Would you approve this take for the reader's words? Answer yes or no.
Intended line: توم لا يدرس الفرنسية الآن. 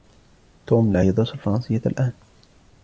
yes